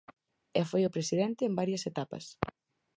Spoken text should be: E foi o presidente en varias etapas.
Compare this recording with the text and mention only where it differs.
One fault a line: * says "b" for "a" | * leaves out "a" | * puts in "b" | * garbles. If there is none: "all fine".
all fine